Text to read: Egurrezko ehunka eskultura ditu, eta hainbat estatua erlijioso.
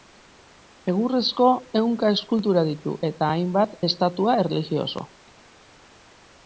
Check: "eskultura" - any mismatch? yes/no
no